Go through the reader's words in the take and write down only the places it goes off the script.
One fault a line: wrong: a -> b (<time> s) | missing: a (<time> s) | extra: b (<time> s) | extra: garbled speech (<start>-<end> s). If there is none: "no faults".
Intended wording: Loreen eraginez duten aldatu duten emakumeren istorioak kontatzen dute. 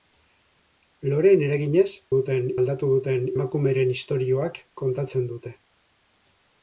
no faults